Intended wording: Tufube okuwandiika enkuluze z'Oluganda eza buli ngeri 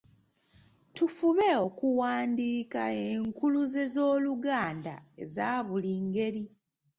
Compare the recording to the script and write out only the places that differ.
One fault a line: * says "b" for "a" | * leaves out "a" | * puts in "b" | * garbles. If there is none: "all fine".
all fine